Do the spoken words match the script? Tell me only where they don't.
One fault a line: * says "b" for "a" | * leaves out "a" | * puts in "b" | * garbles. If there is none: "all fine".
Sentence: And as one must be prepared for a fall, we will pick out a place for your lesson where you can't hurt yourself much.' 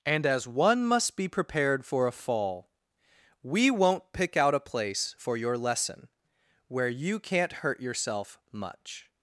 * says "won't" for "will"